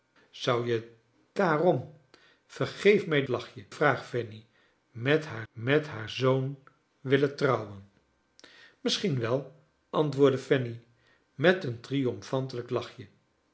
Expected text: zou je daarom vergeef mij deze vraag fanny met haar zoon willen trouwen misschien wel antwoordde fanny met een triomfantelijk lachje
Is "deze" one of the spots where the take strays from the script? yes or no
yes